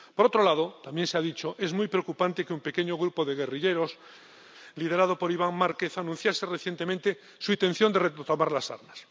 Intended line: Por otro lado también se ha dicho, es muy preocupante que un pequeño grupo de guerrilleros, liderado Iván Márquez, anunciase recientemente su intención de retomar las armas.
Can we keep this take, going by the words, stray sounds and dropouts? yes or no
no